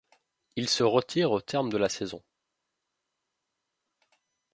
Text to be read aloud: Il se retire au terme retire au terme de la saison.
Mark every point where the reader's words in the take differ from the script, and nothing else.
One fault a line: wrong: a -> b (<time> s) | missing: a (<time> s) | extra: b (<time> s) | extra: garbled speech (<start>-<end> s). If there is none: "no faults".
missing: retire au terme (1.7 s)